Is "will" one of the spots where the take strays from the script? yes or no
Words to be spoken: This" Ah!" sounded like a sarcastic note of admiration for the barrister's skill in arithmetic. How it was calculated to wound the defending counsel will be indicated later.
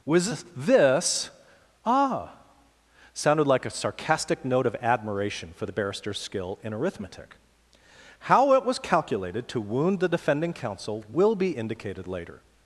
no